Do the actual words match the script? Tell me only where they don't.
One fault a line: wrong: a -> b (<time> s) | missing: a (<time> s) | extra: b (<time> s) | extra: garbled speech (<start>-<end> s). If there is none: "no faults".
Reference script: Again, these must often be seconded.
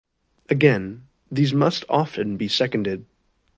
no faults